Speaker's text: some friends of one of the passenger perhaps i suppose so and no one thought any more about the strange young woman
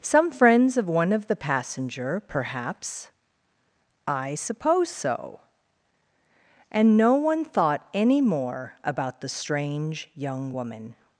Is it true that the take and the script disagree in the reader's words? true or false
false